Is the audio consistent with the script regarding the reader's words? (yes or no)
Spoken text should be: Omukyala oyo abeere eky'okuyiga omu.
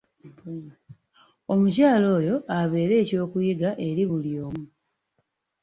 no